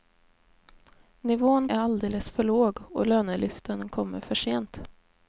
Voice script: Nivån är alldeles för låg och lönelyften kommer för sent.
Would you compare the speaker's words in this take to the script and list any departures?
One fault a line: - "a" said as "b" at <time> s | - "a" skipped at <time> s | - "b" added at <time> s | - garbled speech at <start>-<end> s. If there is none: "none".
none